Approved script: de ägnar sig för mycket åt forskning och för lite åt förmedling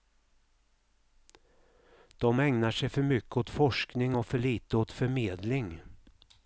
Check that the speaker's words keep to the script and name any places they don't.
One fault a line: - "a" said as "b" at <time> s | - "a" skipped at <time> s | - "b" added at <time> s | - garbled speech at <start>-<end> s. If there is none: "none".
none